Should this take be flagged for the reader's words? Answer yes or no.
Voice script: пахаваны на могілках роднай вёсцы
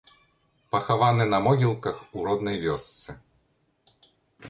yes